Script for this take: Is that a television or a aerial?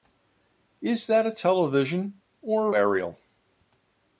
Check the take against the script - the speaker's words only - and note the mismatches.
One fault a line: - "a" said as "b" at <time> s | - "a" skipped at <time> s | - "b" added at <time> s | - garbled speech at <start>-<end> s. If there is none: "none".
none